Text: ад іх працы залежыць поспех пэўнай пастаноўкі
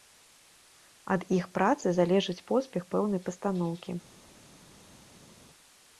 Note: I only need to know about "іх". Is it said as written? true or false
true